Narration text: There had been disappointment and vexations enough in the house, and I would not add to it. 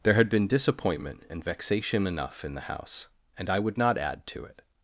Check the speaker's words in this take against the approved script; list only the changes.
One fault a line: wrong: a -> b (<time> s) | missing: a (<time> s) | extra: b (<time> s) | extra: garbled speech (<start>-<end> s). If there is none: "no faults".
wrong: vexations -> vexation (1.4 s)